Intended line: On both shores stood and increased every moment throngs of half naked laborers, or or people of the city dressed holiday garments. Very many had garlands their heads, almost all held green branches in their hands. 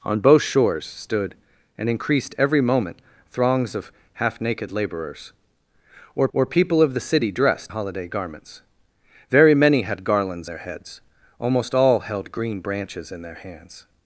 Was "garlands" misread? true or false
false